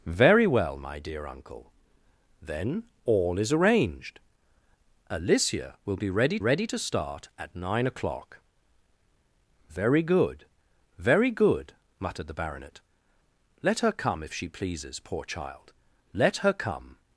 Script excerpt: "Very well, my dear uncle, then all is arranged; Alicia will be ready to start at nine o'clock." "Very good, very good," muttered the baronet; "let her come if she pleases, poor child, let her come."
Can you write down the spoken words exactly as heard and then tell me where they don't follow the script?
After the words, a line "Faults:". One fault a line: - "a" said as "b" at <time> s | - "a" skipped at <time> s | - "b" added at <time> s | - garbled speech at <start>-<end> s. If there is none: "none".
"Very well, my dear uncle, then all is arranged; Alicia will be ready ready to start at nine o'clock." "Very good, very good," muttered the baronet; "let her come if she pleases, poor child, let her come."
Faults:
- "ready" added at 6.4 s